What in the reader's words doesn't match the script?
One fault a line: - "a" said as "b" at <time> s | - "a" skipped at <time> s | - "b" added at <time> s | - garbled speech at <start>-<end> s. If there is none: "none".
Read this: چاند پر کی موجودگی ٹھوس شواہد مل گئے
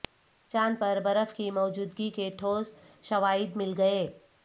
- "برف" added at 1.0 s
- "کے" added at 2.1 s